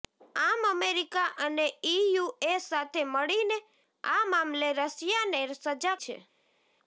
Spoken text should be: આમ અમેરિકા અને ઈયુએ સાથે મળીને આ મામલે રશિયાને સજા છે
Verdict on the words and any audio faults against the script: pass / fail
pass